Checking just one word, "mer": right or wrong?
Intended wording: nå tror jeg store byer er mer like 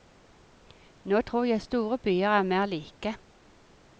right